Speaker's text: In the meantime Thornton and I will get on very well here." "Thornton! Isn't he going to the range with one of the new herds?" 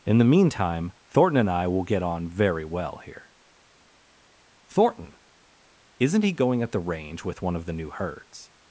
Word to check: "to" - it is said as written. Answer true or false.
false